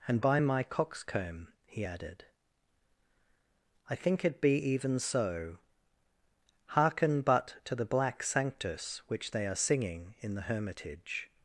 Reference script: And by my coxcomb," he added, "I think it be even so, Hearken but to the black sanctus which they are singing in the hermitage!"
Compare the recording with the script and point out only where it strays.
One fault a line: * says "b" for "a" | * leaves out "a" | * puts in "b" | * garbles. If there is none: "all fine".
all fine